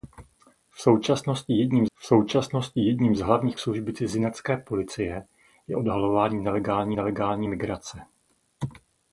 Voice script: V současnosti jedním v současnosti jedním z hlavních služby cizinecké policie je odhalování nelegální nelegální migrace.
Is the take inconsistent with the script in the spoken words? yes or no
no